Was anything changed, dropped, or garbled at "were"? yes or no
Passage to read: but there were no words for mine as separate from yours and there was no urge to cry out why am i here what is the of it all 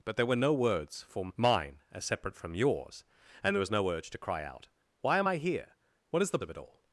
no